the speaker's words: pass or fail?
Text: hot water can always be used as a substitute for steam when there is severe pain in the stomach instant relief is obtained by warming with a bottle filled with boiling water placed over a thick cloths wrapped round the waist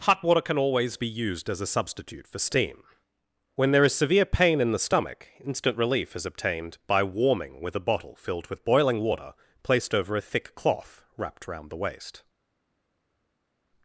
fail